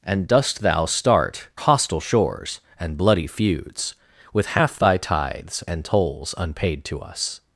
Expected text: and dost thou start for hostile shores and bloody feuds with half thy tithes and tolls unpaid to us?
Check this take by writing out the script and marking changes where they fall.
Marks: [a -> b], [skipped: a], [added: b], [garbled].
and dost thou start [skipped: for] hostile shores and bloody feuds with half thy tithes and tolls unpaid to us?